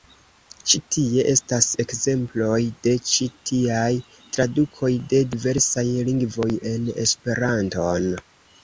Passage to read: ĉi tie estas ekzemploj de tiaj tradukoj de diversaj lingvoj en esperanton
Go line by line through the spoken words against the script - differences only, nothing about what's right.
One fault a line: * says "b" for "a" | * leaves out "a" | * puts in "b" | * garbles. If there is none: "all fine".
* puts in "ĉi"